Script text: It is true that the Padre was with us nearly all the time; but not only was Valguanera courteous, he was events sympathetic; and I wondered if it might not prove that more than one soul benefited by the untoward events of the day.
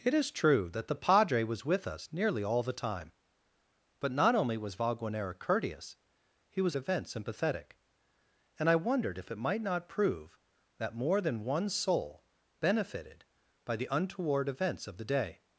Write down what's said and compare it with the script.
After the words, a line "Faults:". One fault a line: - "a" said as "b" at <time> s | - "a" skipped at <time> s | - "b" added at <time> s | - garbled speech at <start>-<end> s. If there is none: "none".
It is true that the Padre was with us nearly all the time; but not only was Valguanera courteous, he was events sympathetic; and I wondered if it might not prove that more than one soul benefited by the untoward events of the day.
Faults:
none